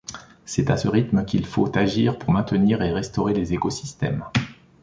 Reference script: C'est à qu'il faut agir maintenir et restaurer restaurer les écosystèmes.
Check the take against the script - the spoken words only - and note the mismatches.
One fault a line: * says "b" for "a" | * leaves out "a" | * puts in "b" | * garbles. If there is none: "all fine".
* puts in "ce rythme"
* puts in "pour"
* leaves out "restaurer"